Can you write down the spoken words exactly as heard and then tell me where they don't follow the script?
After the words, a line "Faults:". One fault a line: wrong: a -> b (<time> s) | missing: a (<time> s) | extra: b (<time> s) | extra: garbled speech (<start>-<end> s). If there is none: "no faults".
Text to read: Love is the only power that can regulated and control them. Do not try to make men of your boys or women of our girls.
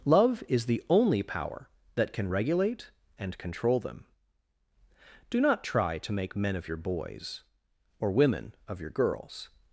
Love is the only power that can regulate and control them. Do not try to make men of your boys or women of your girls.
Faults:
wrong: regulated -> regulate (2.3 s)
wrong: our -> your (8.8 s)